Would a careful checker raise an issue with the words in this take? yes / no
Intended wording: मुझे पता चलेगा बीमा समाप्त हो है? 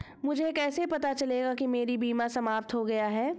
yes